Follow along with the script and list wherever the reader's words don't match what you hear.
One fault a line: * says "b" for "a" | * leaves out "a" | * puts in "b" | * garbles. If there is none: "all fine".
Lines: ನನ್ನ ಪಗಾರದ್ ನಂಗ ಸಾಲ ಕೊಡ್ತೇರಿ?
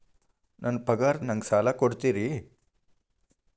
all fine